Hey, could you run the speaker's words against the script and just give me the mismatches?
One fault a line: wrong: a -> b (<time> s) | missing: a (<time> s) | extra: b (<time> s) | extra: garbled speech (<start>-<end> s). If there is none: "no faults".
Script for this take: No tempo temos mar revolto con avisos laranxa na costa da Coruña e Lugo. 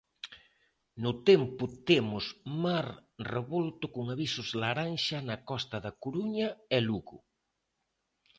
no faults